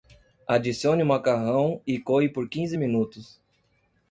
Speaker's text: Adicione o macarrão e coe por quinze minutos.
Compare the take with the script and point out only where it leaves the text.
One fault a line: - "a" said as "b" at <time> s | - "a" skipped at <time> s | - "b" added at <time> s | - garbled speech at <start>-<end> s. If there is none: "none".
none